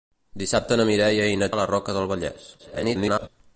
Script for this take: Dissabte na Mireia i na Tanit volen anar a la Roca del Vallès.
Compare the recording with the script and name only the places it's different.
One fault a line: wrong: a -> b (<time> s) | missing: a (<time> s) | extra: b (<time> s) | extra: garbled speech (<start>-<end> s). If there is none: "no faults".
missing: Tanit volen anar (1.5 s)
extra: garbled speech (2.6-3.3 s)